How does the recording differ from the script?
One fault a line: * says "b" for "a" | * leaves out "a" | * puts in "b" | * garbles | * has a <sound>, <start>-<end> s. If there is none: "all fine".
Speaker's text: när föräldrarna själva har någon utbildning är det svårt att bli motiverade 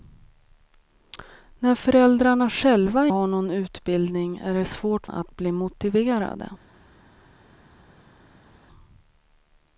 all fine